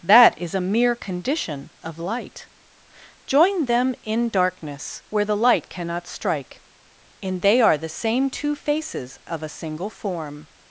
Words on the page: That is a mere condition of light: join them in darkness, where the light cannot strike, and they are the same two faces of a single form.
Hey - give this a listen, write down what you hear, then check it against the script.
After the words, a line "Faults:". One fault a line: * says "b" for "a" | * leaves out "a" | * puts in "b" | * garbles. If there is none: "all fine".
That is a mere condition of light: join them in darkness, where the light cannot strike, and they are the same two faces of a single form.
Faults:
all fine